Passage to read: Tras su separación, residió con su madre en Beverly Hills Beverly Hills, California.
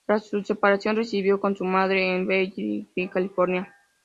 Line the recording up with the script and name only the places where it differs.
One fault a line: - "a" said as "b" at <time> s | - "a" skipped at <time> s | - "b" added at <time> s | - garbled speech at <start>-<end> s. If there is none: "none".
- "Beverly Hills" skipped at 3.1 s